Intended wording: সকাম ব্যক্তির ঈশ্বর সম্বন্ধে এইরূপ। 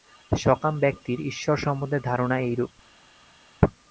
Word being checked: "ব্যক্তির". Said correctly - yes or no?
yes